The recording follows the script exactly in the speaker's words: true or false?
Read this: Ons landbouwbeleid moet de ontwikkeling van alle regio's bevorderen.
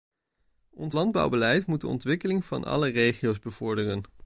true